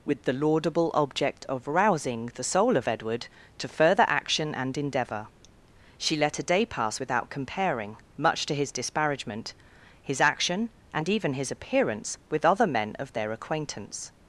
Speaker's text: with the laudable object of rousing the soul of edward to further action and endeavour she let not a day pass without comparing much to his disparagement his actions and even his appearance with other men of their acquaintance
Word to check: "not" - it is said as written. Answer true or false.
false